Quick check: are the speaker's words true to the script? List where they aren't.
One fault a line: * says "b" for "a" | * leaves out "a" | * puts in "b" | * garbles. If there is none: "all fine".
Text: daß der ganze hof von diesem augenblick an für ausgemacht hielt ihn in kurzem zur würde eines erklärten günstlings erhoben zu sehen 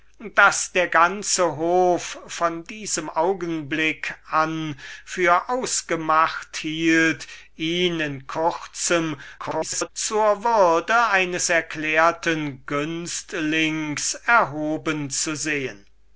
* garbles